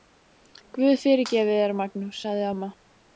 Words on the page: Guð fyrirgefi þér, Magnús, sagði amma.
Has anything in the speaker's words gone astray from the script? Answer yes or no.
no